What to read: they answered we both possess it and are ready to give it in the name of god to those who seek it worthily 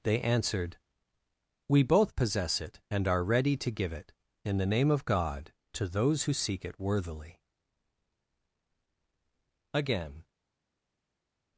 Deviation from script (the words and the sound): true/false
true